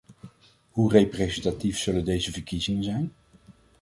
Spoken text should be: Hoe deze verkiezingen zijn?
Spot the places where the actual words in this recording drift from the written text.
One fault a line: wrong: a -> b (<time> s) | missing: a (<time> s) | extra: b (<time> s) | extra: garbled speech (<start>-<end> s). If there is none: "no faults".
extra: representatief zullen (0.9 s)